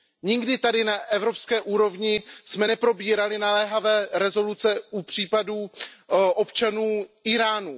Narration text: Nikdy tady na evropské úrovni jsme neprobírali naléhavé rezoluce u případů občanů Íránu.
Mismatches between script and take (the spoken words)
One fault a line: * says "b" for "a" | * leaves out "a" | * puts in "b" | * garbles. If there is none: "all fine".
all fine